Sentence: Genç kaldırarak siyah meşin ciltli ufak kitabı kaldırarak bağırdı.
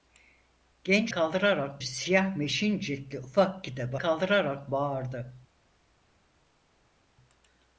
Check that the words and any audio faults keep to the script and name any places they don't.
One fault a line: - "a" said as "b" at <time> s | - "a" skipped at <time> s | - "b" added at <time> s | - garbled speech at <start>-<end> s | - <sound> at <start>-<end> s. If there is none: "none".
none